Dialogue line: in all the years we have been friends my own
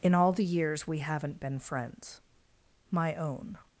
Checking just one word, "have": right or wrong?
wrong